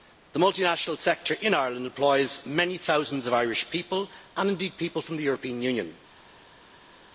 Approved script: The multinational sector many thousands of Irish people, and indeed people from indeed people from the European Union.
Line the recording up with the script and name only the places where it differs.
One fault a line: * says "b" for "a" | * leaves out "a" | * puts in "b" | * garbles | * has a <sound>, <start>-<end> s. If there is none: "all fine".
* puts in "in Ireland employs"
* leaves out "indeed people from"